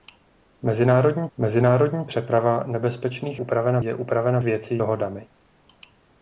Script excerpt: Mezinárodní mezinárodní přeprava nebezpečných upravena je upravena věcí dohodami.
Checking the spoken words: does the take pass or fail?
pass